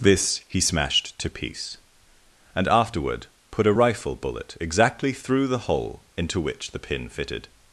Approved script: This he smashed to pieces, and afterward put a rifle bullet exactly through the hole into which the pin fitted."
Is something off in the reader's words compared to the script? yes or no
yes